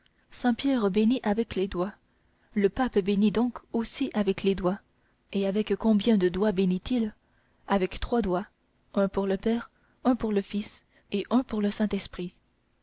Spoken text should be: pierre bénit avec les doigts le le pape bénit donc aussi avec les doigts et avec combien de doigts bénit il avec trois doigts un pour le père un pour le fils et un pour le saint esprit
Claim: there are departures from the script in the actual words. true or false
true